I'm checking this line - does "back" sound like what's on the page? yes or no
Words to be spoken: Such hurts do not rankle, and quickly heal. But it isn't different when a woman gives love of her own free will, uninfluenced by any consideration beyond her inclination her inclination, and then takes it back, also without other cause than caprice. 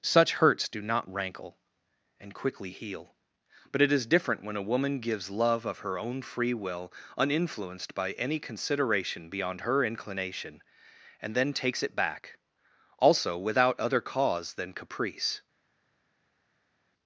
yes